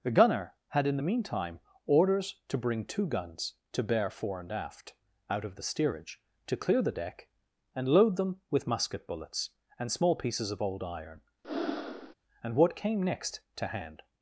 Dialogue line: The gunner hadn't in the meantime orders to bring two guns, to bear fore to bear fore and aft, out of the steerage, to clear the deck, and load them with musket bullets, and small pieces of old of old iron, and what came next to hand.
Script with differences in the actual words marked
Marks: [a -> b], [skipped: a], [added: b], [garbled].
The gunner [hadn't -> had] in the meantime orders to bring two guns, to bear fore [skipped: to bear fore] and aft, out of the steerage, to clear the deck, and load them with musket bullets, and small pieces of old [skipped: of old] iron, and what came next to hand.